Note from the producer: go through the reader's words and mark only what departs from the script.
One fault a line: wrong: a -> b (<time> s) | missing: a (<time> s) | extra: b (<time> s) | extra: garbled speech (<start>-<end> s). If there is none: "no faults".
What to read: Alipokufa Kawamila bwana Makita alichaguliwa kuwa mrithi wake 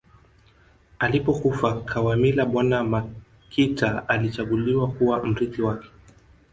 no faults